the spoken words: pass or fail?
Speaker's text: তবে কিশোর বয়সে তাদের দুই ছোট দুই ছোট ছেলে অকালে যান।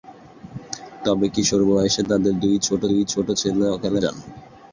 pass